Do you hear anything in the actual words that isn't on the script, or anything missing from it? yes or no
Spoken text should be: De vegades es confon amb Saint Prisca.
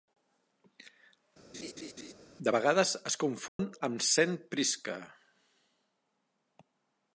no